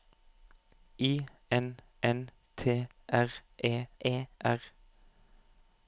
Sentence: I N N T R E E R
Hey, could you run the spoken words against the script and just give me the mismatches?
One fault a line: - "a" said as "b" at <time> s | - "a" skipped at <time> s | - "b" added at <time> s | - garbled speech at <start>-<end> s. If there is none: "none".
none